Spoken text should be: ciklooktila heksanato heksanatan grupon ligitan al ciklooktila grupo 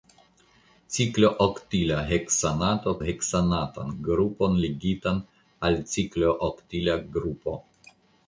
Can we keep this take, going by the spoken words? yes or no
yes